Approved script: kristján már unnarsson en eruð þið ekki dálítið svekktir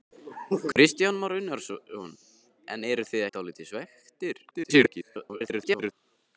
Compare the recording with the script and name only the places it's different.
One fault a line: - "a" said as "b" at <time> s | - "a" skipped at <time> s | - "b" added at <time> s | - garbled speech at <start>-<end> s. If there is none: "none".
- "ekki" skipped at 3.2 s
- garbled speech at 4.5-5.9 s